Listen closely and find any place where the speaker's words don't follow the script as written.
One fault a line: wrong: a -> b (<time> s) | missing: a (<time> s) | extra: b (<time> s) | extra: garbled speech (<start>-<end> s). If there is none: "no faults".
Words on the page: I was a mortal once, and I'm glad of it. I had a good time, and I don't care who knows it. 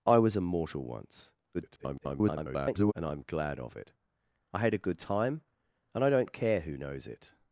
extra: garbled speech (1.5-2.9 s)